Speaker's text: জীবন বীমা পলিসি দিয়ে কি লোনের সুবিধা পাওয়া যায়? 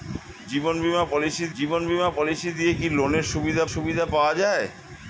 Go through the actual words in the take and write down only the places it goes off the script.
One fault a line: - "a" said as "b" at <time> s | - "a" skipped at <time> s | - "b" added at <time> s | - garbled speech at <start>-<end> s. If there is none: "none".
- "জীবন বীমা পলিসি" added at 1.5 s
- "সুবিধা" added at 3.7 s